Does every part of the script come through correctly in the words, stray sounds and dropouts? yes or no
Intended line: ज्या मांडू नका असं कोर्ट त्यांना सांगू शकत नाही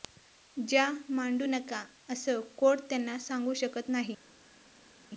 yes